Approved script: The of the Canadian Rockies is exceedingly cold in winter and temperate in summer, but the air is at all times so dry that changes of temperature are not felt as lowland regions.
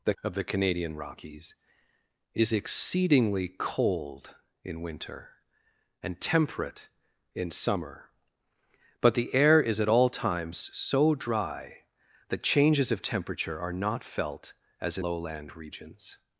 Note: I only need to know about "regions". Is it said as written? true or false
true